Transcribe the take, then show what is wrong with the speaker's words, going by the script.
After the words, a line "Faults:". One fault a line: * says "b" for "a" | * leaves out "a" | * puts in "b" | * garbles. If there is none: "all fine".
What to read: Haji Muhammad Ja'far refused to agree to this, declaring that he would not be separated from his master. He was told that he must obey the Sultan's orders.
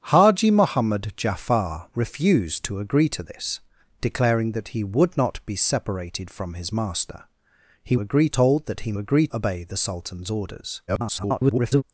Haji Muhammad Ja'far refused to agree to this, declaring that he would not be separated from his master. He agree told that he agree obey the Sultan's orders. [garbled]
Faults:
* says "agree" for "was"
* says "agree" for "must"
* garbles